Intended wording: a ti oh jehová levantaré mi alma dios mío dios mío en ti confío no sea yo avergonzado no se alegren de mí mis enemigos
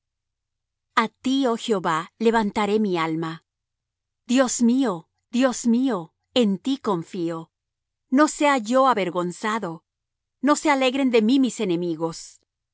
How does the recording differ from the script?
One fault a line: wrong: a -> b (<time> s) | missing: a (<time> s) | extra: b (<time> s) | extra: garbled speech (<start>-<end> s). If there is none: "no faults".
no faults